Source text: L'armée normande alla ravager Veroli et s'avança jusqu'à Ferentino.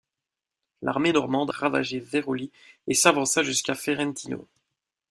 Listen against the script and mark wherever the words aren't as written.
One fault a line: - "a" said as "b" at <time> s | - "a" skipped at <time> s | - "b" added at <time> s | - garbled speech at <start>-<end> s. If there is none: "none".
- "alla" skipped at 1.5 s